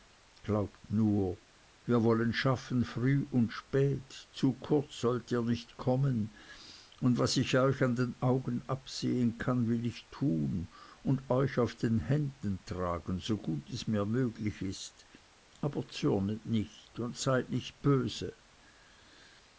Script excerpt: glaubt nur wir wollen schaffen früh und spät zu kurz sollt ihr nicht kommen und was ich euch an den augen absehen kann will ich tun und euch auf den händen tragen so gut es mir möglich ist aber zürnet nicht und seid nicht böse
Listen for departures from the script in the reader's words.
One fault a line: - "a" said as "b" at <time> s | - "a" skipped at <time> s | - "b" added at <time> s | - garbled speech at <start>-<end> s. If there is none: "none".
none